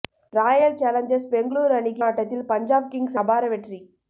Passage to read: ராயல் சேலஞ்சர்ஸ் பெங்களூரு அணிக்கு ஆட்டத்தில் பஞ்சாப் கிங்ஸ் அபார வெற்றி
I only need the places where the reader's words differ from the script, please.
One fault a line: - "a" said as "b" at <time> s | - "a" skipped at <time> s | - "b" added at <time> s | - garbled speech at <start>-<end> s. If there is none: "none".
none